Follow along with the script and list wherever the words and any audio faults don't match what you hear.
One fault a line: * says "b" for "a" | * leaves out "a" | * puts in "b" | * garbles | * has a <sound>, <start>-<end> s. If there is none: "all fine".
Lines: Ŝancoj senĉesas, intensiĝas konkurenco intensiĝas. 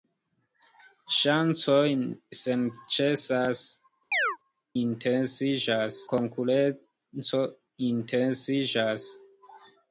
* has a chirp, 4.1-4.4 s